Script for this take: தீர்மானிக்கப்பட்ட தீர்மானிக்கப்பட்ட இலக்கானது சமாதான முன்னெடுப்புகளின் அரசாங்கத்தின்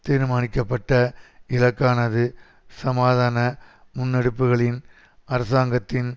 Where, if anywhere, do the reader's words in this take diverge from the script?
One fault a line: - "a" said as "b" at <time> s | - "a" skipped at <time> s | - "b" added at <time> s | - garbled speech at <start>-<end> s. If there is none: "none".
- "தீர்மானிக்கப்பட்ட" skipped at 0.9 s